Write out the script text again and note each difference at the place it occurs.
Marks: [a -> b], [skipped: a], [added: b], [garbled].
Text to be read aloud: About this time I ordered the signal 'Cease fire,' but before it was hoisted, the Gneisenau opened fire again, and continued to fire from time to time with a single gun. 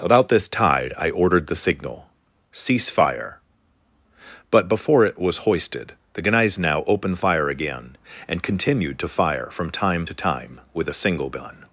About this [time -> tide] I ordered the signal 'Cease fire,' but before it was hoisted, the Gneisenau opened fire again, and continued to fire from time to time with a single gun.